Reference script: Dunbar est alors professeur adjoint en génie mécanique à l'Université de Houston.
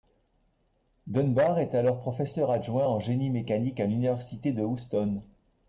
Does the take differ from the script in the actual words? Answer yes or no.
no